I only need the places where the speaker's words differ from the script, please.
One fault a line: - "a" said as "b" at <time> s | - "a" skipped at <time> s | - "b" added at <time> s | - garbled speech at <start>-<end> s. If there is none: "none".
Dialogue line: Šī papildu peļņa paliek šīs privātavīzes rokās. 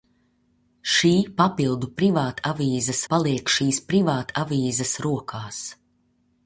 - "peļņa" said as "privātavīzes" at 2.0 s